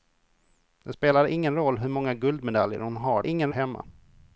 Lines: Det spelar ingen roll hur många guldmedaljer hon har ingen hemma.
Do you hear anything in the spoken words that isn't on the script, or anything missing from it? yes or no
no